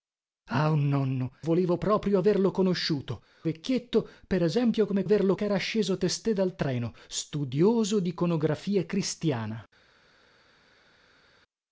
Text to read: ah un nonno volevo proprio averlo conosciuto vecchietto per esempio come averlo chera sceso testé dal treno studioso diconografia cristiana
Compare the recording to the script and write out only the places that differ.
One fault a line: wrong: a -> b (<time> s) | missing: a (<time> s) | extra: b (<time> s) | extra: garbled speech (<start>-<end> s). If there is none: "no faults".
no faults